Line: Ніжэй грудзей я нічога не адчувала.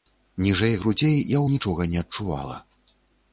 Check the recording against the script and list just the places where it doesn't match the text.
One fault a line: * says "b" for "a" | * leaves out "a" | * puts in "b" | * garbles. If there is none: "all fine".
all fine